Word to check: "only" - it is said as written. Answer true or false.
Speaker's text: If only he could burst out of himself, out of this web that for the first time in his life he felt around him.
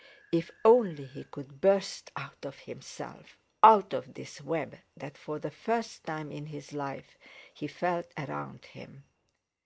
true